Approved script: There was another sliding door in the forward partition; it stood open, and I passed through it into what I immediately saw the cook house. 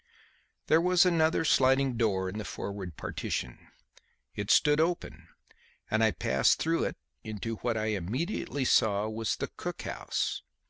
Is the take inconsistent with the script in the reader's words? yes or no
yes